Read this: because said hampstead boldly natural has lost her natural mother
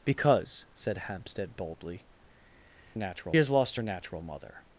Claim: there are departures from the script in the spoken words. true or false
false